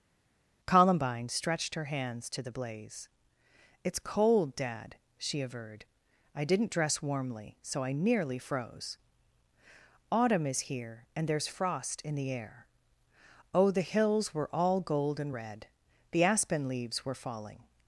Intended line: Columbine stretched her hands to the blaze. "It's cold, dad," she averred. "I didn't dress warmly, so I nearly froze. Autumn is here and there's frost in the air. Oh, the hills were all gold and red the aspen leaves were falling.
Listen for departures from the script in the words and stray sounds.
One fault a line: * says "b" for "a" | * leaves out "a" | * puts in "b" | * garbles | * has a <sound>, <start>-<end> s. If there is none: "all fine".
all fine